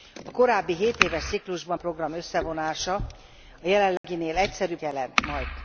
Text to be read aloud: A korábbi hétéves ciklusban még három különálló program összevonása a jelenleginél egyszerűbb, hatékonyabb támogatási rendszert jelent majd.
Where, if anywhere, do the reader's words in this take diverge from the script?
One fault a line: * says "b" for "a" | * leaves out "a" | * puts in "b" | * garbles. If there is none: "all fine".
* leaves out "még három különálló"
* leaves out "hatékonyabb támogatási rendszert"